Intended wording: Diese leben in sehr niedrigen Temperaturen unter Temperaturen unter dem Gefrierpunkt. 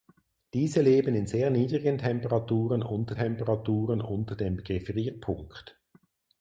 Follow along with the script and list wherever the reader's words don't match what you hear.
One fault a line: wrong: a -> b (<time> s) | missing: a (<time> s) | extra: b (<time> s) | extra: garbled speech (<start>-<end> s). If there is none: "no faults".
no faults